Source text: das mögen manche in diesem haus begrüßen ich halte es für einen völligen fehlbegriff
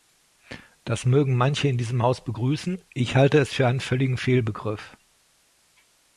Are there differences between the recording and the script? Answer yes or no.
no